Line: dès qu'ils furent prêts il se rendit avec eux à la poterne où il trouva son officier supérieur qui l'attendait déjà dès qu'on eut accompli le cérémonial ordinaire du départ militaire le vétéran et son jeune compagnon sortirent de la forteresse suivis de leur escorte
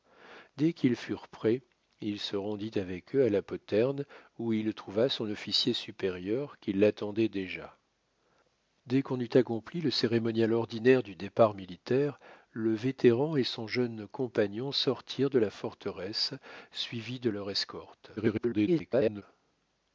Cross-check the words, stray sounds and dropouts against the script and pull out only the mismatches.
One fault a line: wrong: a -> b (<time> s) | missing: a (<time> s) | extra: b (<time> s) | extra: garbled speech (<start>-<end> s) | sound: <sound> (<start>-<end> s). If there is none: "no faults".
extra: garbled speech (18.2-19.2 s)